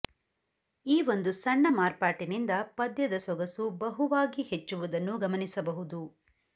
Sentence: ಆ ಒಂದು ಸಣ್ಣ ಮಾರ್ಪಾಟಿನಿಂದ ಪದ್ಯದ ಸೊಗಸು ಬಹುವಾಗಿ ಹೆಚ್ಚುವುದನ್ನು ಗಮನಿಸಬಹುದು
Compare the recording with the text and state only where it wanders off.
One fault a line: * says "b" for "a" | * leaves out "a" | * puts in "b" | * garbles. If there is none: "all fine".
* says "ಈ" for "ಆ"